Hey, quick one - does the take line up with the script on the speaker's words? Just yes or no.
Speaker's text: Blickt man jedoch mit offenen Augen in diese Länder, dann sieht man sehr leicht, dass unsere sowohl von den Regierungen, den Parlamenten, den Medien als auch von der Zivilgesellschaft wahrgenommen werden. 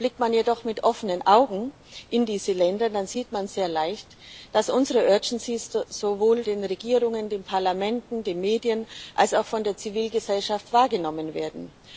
no